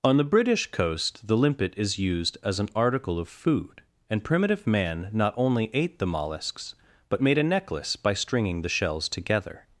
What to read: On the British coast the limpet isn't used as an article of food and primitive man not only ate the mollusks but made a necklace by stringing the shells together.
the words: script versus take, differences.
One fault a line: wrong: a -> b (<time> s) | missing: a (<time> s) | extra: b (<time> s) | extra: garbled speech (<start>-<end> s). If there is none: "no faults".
wrong: isn't -> is (1.8 s)